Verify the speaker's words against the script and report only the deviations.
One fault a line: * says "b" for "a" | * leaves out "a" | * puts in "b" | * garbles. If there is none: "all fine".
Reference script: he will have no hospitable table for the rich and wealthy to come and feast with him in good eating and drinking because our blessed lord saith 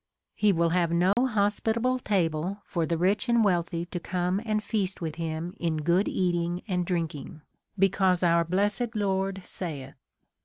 all fine